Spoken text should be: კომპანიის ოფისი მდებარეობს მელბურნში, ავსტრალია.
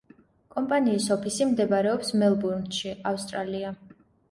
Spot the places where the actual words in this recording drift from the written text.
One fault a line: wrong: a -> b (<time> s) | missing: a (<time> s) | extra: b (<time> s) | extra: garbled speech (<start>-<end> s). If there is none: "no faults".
no faults